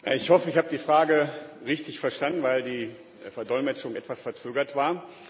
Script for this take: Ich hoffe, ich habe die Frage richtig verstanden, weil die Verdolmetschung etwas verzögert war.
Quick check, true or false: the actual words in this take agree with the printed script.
true